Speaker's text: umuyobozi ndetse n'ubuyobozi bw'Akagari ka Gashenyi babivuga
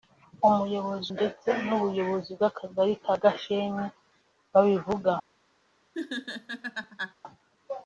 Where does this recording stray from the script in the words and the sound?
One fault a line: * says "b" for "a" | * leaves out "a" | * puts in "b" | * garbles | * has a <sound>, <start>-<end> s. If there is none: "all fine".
* has a laugh, 5.9-7.1 s